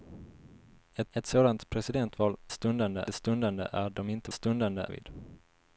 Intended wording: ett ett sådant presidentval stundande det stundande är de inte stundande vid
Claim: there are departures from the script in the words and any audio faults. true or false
false